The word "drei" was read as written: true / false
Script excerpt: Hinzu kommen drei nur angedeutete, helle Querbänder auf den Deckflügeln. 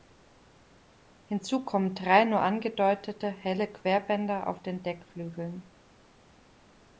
true